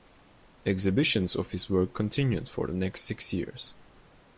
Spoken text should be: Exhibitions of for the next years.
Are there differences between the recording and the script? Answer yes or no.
yes